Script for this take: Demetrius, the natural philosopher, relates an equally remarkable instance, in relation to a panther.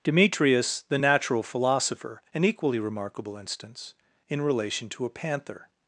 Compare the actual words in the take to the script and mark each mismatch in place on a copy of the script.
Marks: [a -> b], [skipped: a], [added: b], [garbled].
Demetrius, the natural philosopher, [skipped: relates] an equally remarkable instance, in relation to a panther.